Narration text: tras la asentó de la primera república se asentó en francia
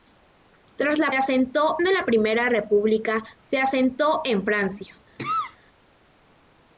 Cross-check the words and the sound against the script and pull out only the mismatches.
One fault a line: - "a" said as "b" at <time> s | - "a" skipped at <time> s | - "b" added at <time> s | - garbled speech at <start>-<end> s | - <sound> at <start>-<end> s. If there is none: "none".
- cough at 5.2-5.6 s